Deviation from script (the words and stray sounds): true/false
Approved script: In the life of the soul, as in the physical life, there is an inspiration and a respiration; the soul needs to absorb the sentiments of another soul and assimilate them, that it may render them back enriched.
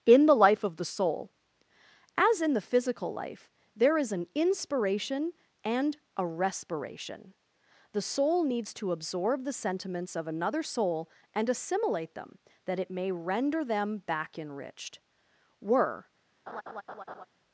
true